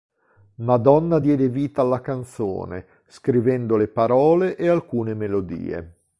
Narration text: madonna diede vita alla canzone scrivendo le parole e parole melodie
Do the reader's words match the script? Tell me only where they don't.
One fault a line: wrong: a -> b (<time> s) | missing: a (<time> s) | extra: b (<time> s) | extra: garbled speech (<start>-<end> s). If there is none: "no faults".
wrong: parole -> alcune (4.7 s)